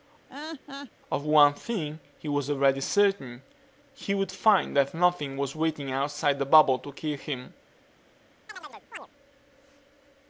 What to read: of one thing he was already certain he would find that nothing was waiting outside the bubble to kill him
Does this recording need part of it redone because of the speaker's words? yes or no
no